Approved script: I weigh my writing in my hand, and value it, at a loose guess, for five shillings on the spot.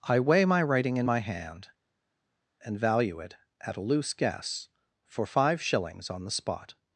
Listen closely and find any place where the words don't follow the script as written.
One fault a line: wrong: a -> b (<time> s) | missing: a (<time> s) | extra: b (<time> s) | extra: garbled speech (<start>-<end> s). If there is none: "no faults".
no faults